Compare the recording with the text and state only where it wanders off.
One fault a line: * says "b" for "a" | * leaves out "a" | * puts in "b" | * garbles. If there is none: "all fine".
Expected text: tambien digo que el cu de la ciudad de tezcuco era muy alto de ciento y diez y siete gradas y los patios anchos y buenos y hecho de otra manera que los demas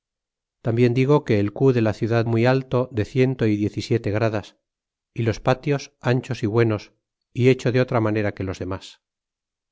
* leaves out "de tezcuco era"